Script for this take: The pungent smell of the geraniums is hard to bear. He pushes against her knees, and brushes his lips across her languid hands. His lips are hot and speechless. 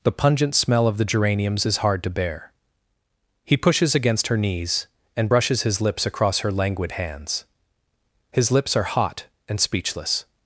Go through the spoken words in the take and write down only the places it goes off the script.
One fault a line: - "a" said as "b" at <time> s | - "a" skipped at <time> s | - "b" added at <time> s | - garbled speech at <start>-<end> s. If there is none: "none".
none